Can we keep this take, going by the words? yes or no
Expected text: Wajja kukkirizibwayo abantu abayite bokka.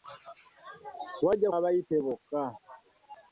no